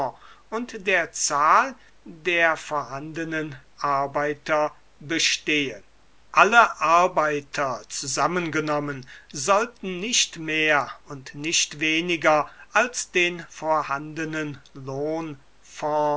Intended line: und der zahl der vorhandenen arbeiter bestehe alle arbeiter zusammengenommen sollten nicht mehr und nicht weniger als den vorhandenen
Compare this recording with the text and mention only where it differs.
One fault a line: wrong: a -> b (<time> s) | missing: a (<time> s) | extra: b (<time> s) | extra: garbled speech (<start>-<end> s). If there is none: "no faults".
no faults